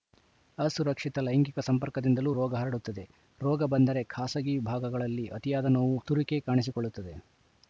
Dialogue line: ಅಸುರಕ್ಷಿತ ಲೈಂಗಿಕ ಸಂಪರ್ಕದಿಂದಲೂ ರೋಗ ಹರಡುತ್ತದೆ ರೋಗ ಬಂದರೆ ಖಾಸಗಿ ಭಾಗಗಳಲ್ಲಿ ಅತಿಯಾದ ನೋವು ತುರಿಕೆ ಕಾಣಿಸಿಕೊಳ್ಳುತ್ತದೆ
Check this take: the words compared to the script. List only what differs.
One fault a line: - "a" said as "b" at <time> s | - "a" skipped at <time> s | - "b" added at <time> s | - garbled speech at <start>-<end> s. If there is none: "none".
none